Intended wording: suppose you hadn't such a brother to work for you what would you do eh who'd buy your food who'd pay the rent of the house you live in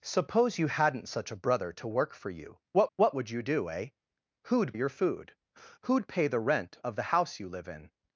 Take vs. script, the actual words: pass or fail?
fail